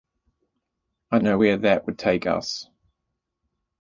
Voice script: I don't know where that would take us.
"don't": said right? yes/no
no